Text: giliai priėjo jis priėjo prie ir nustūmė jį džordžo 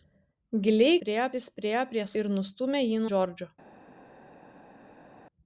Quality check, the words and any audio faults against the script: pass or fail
pass